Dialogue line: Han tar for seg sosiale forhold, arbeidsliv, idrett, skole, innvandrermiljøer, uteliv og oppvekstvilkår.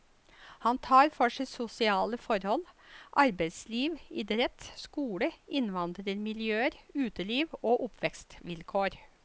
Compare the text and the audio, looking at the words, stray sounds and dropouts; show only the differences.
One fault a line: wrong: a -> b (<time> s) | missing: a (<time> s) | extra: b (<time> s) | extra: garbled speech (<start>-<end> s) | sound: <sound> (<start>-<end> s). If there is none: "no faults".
no faults